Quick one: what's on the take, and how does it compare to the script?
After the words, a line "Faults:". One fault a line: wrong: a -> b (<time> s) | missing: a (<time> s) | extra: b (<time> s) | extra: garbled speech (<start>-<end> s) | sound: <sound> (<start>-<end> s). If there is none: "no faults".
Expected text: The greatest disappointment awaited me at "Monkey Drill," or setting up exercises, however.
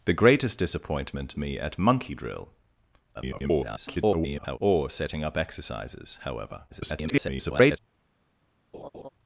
The greatest disappointment me at "Monkey Drill," [garbled] or setting up exercises, however. [garbled]
Faults:
missing: awaited (1.4 s)
extra: garbled speech (3.1-4.6 s)
extra: garbled speech (6.7-7.8 s)
sound: laugh (8.7-9.1 s)